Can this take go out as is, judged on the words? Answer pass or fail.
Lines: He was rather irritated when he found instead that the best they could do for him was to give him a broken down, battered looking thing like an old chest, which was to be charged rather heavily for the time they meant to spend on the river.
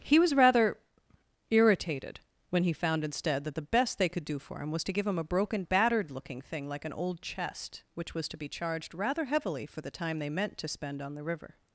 fail